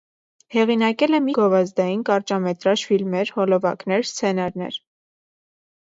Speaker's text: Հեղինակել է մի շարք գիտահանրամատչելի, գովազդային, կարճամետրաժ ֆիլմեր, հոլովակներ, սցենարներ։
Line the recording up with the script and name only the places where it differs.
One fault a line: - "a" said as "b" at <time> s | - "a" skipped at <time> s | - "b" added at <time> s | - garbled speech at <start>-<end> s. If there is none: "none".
- "շարք գիտահանրամատչելի" skipped at 1.3 s